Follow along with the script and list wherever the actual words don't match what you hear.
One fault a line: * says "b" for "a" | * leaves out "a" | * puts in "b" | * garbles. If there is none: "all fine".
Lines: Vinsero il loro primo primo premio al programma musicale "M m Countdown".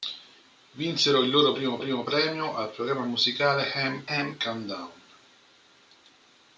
all fine